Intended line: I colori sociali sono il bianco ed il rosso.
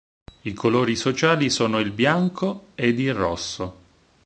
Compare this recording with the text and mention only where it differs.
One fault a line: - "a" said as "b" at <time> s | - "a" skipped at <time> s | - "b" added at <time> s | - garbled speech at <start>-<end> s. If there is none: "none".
none